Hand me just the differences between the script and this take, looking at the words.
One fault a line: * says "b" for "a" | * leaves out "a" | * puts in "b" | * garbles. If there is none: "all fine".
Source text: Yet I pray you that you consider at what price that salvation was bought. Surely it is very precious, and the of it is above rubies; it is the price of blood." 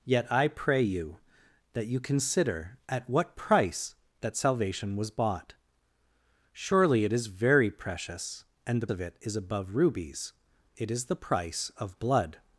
all fine